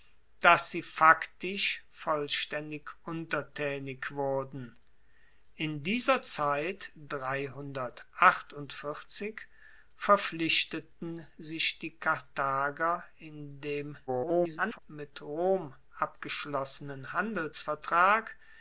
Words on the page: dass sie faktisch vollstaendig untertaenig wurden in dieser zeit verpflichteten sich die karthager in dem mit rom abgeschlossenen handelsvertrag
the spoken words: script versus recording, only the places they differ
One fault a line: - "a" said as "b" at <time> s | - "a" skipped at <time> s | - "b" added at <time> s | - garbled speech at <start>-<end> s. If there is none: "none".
- garbled speech at 14.1-14.8 s